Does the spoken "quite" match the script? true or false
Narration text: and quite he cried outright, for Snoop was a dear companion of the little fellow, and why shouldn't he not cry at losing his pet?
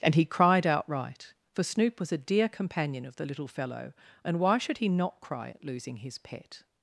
false